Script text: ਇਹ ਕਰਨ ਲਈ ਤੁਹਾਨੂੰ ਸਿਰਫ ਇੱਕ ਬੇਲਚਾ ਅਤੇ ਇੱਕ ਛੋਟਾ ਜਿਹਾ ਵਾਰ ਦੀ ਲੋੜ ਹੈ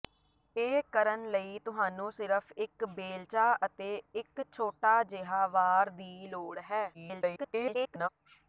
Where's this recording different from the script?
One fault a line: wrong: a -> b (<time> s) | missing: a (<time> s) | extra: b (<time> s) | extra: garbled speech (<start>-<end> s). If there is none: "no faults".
extra: garbled speech (6.9-8.1 s)